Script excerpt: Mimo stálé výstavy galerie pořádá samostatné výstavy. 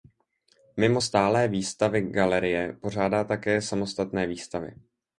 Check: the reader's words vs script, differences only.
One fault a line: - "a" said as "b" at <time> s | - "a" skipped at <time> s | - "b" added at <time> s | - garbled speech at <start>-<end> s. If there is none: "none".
- "také" added at 3.2 s